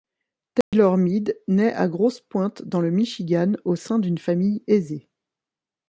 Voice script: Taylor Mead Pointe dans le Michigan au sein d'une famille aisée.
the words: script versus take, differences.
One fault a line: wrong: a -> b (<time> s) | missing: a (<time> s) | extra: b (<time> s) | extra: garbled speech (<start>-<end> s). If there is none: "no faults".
extra: naît à Grosse (1.5 s)